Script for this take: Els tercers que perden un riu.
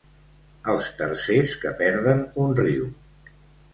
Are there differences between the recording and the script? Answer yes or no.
no